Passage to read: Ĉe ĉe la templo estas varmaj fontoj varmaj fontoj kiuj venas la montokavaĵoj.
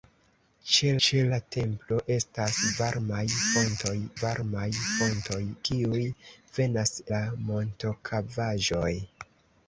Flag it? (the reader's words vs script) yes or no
no